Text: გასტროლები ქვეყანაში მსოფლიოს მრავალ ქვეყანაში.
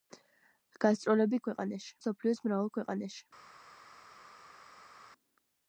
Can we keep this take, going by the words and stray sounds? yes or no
yes